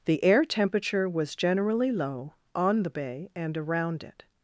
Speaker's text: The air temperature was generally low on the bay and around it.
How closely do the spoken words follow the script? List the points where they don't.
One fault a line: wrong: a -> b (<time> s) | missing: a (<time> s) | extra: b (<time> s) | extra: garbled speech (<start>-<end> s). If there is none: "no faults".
no faults